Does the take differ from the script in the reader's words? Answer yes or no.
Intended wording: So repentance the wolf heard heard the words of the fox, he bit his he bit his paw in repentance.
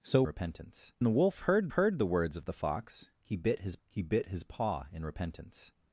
no